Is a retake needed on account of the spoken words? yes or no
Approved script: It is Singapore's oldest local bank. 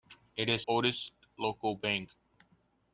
yes